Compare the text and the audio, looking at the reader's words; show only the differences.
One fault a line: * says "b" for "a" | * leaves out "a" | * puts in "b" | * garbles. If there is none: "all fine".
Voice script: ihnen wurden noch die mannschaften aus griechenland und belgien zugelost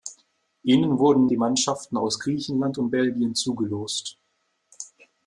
* leaves out "noch"